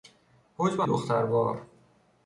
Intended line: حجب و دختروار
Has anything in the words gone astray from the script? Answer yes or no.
no